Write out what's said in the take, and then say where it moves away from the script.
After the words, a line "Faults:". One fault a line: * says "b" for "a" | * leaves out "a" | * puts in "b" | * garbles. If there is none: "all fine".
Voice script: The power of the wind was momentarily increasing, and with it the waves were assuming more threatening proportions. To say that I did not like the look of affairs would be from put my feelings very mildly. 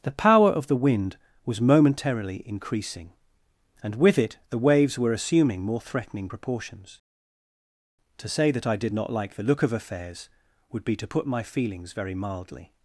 The power of the wind was momentarily increasing, and with it the waves were assuming more threatening proportions. To say that I did not like the look of affairs would be to put my feelings very mildly.
Faults:
* says "to" for "from"